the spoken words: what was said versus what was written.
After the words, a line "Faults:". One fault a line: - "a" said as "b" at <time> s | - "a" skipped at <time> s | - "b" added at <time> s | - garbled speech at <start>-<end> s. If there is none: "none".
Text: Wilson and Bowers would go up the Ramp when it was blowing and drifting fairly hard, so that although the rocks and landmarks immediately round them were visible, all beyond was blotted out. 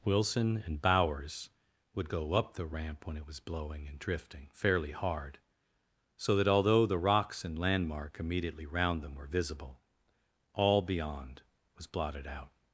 Wilson and Bowers would go up the Ramp when it was blowing and drifting fairly hard, so that although the rocks and landmark immediately round them were visible, all beyond was blotted out.
Faults:
- "landmarks" said as "landmark" at 7.6 s